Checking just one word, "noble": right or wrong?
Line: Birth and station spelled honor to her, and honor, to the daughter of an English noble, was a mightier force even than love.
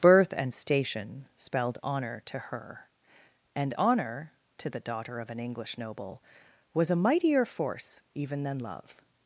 right